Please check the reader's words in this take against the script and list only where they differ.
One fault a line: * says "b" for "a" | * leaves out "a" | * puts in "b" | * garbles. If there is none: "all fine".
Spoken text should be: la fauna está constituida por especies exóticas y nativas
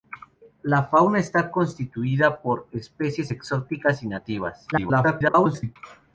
* garbles